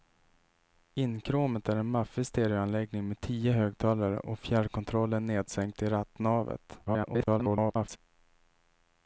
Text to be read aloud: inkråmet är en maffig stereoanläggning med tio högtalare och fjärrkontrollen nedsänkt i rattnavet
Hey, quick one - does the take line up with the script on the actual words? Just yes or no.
no